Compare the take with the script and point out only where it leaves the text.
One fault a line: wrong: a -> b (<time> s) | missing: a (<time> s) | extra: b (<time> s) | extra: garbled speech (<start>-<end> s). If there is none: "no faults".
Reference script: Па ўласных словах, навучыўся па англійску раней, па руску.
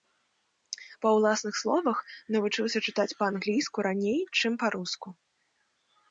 extra: чытаць (2.9 s)
extra: чым (4.4 s)